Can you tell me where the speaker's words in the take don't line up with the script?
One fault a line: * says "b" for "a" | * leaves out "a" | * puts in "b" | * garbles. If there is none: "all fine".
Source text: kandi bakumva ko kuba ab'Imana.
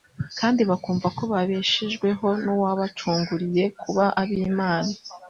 * puts in "babeshejweho n'uwabacunguriye"